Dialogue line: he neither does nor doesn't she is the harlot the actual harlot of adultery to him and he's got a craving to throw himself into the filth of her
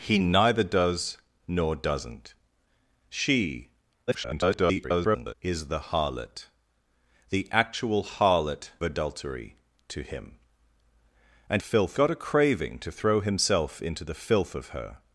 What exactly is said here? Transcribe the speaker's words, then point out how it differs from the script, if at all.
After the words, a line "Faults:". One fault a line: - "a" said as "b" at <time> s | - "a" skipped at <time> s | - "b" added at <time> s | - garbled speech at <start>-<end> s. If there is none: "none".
he neither does nor doesn't she [garbled] is the harlot the actual harlot adultery to him and filth got a craving to throw himself into the filth of her
Faults:
- garbled speech at 4.1-5.3 s
- "of" skipped at 8.7 s
- "he's" said as "filth" at 11.6 s